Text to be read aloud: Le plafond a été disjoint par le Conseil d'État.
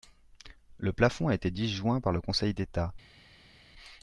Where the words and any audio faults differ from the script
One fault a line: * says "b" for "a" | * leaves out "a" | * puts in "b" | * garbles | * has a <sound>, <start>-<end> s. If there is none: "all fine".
all fine